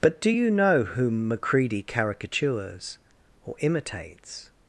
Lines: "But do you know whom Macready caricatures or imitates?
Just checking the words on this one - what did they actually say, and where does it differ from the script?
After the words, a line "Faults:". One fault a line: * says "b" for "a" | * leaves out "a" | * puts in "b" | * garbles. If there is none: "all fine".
"But do you know whom Macready caricatures or imitates?
Faults:
all fine